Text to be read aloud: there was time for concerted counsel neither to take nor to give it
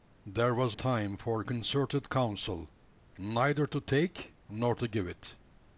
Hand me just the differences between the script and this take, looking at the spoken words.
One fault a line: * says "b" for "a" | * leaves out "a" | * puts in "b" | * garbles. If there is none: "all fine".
all fine